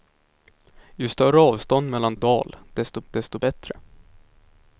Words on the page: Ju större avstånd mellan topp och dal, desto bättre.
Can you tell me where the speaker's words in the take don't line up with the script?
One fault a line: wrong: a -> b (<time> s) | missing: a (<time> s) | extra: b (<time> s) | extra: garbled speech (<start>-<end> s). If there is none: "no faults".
missing: topp (2.2 s)
extra: desto (3.1 s)